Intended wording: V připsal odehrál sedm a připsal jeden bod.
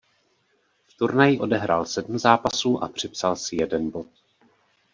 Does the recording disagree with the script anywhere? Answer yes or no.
yes